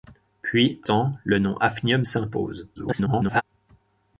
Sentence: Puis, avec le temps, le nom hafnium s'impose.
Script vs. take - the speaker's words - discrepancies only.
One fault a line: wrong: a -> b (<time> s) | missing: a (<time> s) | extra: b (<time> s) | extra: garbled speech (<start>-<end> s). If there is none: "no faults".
missing: avec le (0.8 s)
extra: garbled speech (2.8-3.4 s)